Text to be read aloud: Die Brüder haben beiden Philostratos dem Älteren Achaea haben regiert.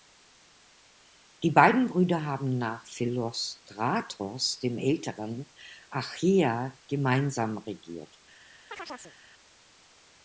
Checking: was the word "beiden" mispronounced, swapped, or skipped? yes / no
yes